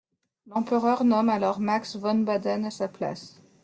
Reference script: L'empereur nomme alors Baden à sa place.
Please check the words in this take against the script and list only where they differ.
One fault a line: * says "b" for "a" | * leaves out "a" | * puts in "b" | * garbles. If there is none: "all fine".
* puts in "Max von"